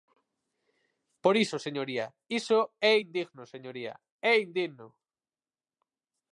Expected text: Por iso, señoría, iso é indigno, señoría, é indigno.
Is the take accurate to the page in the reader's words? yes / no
yes